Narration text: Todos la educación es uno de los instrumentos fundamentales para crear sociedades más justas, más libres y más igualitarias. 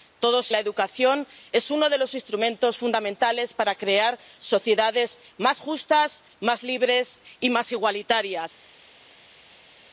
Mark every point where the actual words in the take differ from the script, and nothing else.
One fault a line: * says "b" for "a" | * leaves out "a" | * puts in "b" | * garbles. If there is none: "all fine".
all fine